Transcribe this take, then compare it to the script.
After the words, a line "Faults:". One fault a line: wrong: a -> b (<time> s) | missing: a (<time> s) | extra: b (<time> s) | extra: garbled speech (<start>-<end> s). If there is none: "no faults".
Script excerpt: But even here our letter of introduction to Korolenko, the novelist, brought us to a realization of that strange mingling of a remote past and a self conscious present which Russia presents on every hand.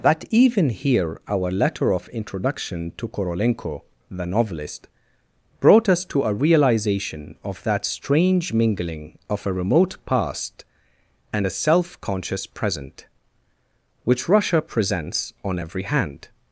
That even here our letter of introduction to Korolenko, the novelist, brought us to a realization of that strange mingling of a remote past and a self conscious present which Russia presents on every hand.
Faults:
wrong: But -> That (0.0 s)